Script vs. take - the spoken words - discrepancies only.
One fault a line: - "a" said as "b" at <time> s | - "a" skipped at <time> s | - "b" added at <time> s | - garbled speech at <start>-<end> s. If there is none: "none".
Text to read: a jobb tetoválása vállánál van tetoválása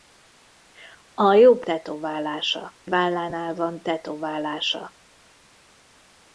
none